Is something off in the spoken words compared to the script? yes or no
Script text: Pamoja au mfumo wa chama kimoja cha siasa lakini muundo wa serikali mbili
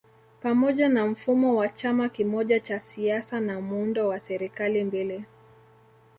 yes